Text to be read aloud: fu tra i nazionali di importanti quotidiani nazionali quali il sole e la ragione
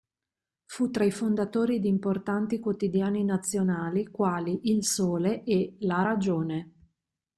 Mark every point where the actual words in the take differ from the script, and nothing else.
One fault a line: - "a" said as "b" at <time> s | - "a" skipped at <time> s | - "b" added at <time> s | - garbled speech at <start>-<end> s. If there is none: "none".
- "nazionali" said as "fondatori" at 1.1 s